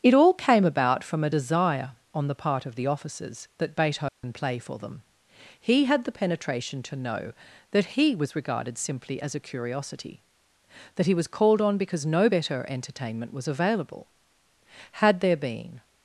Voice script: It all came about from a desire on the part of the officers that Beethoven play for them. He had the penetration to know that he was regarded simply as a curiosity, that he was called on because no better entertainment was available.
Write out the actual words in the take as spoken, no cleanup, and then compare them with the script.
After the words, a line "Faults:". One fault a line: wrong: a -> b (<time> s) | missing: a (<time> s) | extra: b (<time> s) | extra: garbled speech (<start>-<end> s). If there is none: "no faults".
It all came about from a desire on the part of the officers that Beethoven play for them. He had the penetration to know that he was regarded simply as a curiosity, that he was called on because no better entertainment was available. Had there been
Faults:
extra: Had there been (14.9 s)